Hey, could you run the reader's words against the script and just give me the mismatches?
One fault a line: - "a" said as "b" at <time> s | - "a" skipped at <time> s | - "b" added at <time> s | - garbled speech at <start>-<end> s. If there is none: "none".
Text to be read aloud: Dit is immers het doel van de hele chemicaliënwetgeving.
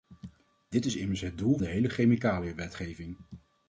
- "van" skipped at 1.6 s